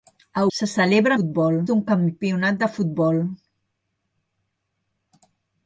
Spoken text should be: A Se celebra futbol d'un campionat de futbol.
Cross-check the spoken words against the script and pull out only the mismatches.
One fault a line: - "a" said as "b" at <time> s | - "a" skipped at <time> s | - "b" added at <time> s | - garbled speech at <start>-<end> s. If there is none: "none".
none